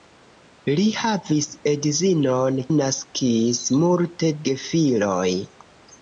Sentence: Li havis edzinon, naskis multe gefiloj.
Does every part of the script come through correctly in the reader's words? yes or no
yes